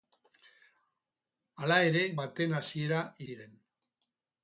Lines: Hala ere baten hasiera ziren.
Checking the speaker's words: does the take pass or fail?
pass